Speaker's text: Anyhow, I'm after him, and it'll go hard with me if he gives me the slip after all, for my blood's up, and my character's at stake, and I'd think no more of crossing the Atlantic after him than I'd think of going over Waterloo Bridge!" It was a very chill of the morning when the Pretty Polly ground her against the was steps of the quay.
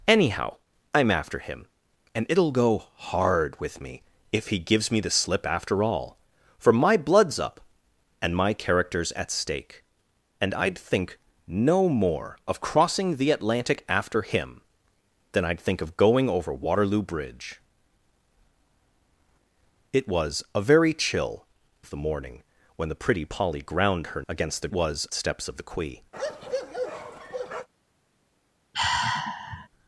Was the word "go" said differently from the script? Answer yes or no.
no